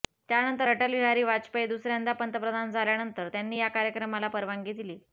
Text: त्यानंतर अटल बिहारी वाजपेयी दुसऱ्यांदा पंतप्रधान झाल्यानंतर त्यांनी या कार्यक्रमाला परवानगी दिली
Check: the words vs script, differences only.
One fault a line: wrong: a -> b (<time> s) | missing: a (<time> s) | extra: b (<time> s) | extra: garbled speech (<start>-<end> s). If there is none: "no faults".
no faults